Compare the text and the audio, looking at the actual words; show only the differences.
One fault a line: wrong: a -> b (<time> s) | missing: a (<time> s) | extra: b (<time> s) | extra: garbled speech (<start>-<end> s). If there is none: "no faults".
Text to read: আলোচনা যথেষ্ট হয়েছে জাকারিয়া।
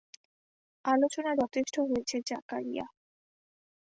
no faults